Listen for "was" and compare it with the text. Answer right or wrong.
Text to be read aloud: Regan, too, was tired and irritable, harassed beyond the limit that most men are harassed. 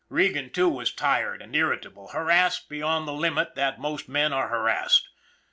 right